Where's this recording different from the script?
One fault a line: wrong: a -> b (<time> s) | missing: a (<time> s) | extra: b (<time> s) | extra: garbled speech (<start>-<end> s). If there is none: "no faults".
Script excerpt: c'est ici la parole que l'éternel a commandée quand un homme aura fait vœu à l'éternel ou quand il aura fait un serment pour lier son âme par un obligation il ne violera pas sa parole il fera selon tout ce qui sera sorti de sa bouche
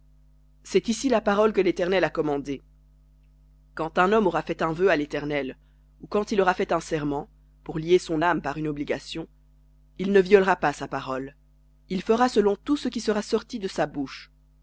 extra: un (4.6 s)
wrong: un -> une (8.6 s)